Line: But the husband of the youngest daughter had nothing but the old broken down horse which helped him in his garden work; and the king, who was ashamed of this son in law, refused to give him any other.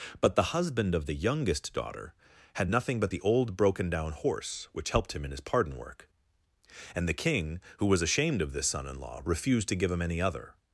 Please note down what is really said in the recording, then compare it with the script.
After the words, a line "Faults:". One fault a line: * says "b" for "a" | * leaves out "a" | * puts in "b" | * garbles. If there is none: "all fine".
But the husband of the youngest daughter had nothing but the old broken down horse which helped him in his pardon work; and the king, who was ashamed of this son in law, refused to give him any other.
Faults:
* says "pardon" for "garden"